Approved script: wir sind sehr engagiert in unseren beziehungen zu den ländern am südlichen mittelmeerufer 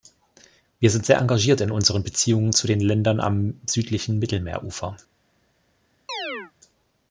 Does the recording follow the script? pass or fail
pass